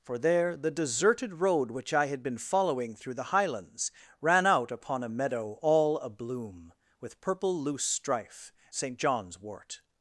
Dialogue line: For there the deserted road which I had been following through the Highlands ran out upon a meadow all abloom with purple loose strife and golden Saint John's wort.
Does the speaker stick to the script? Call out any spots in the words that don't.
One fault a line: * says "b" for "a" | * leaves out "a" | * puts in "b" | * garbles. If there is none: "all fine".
* leaves out "and golden"